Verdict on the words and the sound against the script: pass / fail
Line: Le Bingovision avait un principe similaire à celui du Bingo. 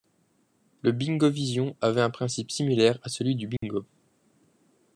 fail